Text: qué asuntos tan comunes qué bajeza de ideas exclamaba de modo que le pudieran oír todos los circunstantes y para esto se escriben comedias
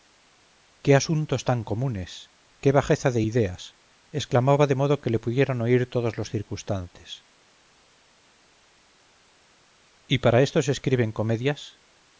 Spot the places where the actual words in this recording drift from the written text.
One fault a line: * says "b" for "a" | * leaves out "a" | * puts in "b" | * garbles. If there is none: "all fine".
all fine